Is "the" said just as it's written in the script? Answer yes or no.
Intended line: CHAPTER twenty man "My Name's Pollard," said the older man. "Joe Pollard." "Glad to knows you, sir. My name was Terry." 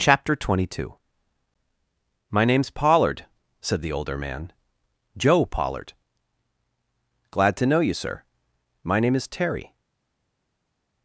yes